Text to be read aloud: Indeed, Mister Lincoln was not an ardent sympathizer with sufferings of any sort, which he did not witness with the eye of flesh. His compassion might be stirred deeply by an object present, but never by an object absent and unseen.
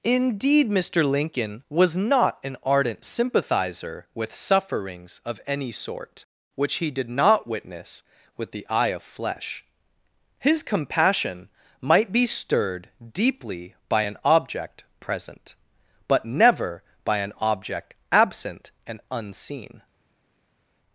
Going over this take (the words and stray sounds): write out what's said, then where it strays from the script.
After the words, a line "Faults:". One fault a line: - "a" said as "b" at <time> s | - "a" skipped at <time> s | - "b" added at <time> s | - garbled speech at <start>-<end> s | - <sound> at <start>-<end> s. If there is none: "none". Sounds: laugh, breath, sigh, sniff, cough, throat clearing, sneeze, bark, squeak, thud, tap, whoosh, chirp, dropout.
Indeed, Mister Lincoln was not an ardent sympathizer with sufferings of any sort, which he did not witness with the eye of flesh. His compassion might be stirred deeply by an object present, but never by an object absent and unseen.
Faults:
none